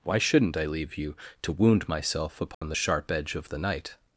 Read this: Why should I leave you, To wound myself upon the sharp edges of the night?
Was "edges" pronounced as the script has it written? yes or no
no